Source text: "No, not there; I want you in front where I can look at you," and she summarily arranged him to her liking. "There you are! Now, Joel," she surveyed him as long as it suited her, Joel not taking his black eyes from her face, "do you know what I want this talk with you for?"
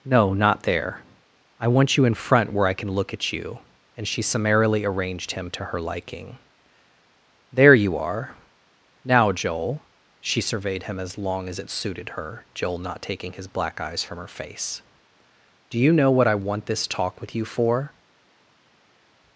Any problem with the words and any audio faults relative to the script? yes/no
no